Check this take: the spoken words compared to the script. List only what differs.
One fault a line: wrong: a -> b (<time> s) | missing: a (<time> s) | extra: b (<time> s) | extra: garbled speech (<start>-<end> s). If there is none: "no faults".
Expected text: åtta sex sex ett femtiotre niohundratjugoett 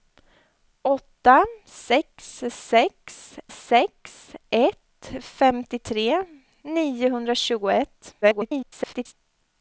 extra: sex (3.5 s)
extra: garbled speech (8.2-9.1 s)